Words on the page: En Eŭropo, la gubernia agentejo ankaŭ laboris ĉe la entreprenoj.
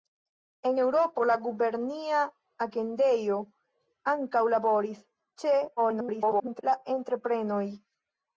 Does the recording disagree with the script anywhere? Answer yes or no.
yes